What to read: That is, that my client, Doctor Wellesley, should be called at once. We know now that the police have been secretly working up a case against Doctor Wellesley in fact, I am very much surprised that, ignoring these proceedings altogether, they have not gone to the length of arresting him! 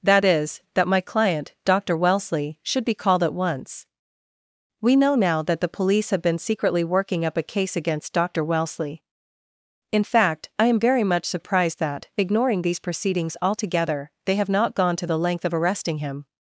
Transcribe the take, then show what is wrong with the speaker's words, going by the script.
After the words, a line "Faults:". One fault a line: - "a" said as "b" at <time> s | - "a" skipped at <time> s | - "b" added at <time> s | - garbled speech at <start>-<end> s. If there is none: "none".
That is, that my client, Doctor Wellesley, should be called at once. We know now that the police have been secretly working up a case against Doctor Wellesley in fact, I am very much surprised that, ignoring these proceedings altogether, they have not gone to the length of arresting him!
Faults:
none